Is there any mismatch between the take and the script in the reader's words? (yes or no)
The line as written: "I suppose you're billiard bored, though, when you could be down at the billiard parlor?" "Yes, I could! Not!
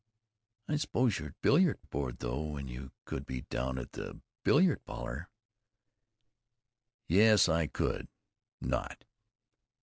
no